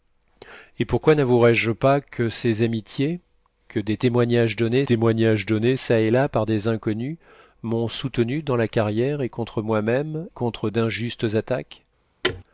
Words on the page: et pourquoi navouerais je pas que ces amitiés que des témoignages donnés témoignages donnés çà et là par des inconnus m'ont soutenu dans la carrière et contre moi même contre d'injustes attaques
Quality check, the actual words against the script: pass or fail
pass